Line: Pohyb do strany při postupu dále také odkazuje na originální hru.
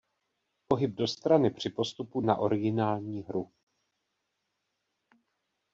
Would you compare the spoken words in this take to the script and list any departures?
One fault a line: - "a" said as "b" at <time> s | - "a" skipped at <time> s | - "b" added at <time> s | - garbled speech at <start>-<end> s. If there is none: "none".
- "dále také odkazuje" skipped at 2.2 s